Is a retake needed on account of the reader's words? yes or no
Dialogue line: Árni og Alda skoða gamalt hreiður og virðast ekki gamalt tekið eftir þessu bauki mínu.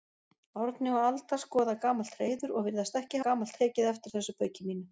no